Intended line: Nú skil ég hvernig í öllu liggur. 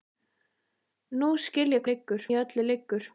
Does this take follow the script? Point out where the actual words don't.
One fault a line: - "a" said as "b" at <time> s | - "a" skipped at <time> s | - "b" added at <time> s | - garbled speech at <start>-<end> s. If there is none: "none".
- "hvernig" said as "liggur" at 1.9 s